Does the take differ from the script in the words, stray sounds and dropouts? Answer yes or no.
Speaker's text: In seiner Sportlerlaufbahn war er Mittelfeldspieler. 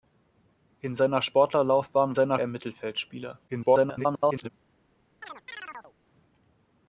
yes